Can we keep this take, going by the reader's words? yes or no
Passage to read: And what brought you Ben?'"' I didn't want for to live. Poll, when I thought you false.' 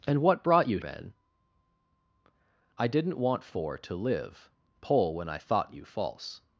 yes